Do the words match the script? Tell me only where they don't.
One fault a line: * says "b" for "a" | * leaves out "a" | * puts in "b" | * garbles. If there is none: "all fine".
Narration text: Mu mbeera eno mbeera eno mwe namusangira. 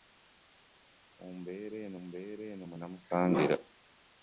all fine